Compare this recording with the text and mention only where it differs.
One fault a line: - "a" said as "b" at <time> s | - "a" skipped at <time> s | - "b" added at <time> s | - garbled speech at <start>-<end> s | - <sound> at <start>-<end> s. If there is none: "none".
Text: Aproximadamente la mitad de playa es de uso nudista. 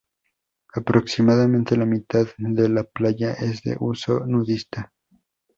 - "la" added at 2.7 s